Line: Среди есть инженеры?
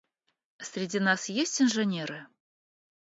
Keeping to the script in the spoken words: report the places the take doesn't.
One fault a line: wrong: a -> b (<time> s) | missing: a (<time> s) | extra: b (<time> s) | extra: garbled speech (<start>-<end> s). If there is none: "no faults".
extra: нас (1.0 s)